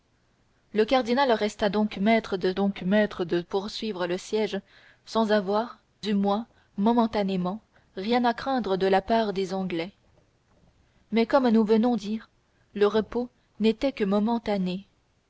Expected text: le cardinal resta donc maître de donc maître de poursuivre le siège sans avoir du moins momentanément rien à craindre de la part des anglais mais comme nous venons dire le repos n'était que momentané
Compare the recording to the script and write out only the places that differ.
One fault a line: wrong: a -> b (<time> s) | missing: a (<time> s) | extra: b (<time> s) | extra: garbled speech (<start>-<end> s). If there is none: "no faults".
no faults